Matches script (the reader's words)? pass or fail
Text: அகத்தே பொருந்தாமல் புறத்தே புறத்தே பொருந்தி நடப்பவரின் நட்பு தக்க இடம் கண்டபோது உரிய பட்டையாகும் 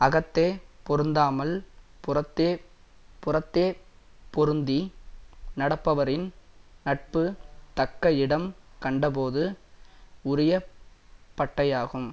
pass